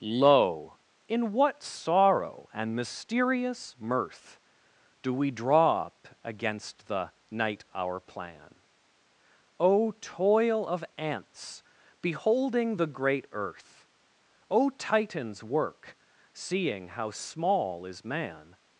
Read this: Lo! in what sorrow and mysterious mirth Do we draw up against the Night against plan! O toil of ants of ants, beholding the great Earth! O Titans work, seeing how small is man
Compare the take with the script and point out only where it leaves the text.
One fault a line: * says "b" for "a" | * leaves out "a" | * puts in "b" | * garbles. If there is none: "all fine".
* says "our" for "against"
* leaves out "of ants"